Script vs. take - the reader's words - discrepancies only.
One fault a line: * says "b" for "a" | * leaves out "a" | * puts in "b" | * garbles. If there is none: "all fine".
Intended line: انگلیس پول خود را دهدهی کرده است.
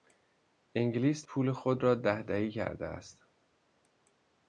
all fine